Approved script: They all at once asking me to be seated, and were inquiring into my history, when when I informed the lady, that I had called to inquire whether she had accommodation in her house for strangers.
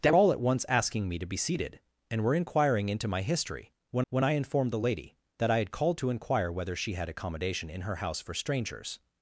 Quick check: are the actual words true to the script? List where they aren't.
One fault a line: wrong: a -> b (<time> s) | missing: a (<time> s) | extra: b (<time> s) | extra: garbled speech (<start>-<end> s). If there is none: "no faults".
no faults